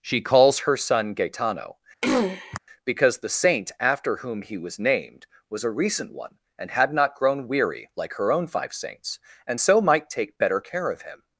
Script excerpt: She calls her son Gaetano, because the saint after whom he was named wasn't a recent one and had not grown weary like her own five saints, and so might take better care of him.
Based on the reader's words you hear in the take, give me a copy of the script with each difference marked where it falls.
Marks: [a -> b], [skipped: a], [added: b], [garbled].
She calls her son Gaetano, because the saint after whom he was named [wasn't -> was] a recent one and had not grown weary like her own five saints, and so might take better care of him.